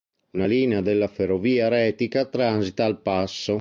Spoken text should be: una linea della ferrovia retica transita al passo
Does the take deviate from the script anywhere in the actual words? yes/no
no